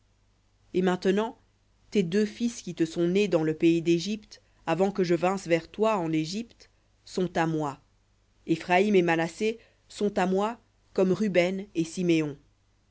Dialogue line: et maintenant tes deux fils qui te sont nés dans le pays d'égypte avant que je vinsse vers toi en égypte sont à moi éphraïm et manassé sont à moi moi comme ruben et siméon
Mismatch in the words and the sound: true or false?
true